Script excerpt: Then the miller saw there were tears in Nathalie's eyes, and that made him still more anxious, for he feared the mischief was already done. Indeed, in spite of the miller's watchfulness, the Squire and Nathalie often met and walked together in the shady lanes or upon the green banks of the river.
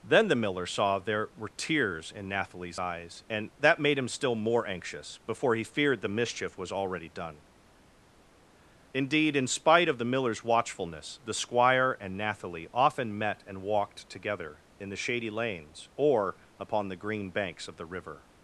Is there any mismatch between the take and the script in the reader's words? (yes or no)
yes